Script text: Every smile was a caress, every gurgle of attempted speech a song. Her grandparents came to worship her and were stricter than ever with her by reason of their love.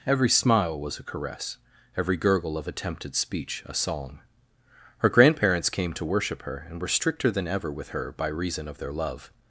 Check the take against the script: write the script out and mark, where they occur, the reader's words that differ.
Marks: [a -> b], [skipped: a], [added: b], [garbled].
Every smile was a caress, every gurgle of attempted speech a song. Her grandparents came to worship her and were stricter than ever with her by reason of their love.